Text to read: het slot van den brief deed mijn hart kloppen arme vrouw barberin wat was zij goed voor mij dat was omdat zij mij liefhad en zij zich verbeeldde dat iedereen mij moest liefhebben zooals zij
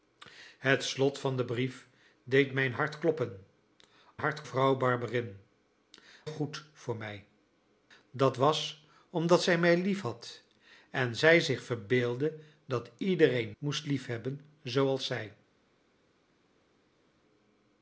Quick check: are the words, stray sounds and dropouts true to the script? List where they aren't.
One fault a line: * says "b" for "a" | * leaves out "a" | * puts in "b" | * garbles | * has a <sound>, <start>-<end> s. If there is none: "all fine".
* says "hart" for "arme"
* leaves out "wat was zij"
* leaves out "mij"